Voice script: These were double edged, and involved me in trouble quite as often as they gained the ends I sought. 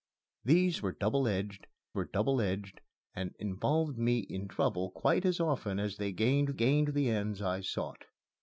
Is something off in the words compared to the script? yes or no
yes